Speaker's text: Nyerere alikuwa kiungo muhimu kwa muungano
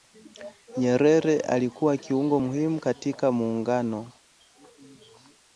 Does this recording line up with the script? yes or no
no